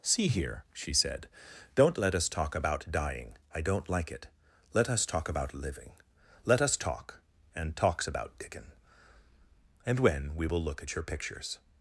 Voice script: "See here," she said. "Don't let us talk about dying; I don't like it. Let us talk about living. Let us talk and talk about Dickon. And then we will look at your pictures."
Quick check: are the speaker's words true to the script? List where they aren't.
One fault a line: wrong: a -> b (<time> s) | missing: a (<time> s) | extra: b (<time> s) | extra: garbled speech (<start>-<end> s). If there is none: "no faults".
wrong: talk -> talks (7.7 s)
wrong: then -> when (10.0 s)